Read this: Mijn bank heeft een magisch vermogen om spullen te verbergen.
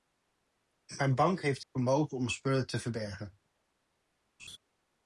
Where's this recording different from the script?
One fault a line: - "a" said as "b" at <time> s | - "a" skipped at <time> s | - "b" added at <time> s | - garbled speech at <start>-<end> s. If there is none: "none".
- "een magisch" skipped at 1.6 s